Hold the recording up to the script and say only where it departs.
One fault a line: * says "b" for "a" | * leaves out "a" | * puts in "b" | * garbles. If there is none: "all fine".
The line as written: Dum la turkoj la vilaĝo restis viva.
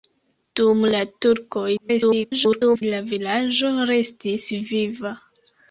* garbles